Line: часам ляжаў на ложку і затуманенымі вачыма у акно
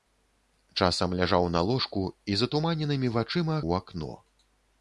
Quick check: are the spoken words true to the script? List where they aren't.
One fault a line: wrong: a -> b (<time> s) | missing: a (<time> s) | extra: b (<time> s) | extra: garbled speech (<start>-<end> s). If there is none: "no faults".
no faults